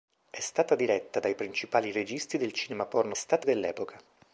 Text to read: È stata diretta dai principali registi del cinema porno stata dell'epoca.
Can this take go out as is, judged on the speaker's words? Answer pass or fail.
pass